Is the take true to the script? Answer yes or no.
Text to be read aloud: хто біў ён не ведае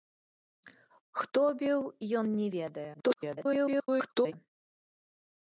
no